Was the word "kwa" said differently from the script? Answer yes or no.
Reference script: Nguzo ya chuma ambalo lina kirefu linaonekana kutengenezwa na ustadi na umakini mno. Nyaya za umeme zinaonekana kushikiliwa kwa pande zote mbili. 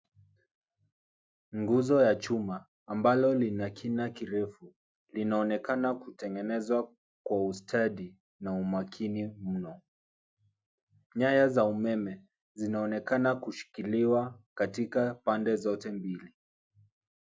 yes